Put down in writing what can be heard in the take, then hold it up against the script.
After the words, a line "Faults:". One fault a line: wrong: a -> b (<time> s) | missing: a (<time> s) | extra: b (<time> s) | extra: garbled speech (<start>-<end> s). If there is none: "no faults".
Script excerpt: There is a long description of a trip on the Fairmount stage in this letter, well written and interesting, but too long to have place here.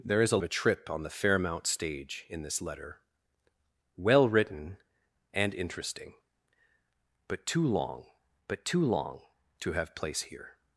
There is a a trip on the Fairmount stage in this letter, well written and interesting, but too long but too long to have place here.
Faults:
missing: long description of (0.4 s)
extra: but too long (8.5 s)